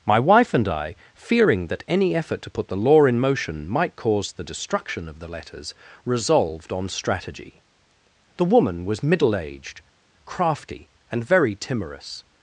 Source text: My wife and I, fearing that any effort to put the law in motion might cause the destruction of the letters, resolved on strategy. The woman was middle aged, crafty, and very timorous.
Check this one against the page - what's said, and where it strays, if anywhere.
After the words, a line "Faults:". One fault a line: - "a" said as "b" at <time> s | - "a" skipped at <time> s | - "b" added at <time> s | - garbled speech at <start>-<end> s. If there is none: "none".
My wife and I, fearing that any effort to put the law in motion might cause the destruction of the letters, resolved on strategy. The woman was middle aged, crafty, and very timorous.
Faults:
none